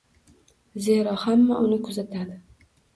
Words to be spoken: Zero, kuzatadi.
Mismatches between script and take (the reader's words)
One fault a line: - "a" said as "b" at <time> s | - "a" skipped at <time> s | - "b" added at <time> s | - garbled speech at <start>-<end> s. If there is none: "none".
- "hamma uni" added at 1.3 s